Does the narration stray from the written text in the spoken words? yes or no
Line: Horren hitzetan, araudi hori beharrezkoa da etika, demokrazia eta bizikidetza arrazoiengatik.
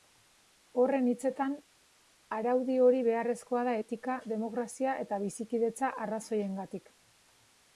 no